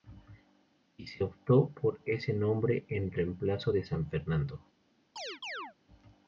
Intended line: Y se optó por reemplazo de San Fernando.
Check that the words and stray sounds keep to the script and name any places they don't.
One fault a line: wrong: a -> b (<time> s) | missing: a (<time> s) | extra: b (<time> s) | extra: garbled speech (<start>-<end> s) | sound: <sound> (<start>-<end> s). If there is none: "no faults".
extra: ese nombre en (2.0 s)
sound: chirp (5.2-5.7 s)